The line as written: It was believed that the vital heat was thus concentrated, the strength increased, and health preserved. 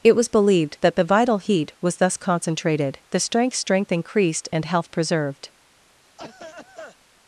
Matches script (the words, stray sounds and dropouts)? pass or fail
fail